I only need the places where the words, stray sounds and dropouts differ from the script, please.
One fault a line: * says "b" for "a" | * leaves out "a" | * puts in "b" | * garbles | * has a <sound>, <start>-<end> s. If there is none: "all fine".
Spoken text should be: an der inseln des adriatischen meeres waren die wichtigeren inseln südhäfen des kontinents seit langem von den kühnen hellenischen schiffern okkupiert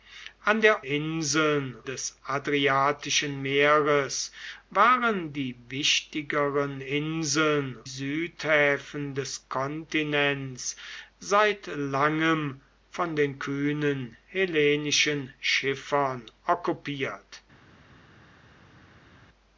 all fine